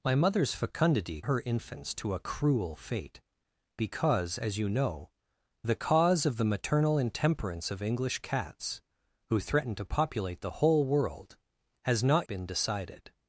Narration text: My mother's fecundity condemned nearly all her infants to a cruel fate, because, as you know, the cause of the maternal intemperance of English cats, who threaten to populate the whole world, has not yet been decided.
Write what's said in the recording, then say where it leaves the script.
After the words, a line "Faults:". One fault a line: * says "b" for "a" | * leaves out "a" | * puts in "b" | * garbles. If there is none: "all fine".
My mother's fecundity her infants to a cruel fate, because, as you know, the cause of the maternal intemperance of English cats, who threaten to populate the whole world, has not been decided.
Faults:
* leaves out "condemned nearly all"
* leaves out "yet"